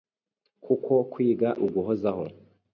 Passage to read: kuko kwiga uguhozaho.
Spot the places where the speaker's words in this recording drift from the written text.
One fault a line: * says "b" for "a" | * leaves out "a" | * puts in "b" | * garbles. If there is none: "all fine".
all fine